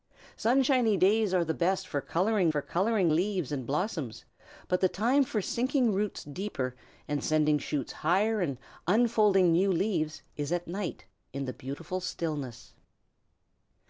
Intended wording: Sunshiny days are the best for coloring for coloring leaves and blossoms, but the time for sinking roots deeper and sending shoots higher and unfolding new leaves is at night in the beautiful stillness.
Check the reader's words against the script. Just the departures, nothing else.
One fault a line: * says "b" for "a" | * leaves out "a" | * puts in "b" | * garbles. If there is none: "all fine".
all fine